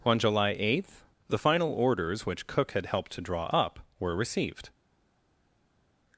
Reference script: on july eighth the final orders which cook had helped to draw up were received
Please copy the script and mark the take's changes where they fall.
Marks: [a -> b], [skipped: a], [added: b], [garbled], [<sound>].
on july eighth the final orders which cook had helped to draw up were received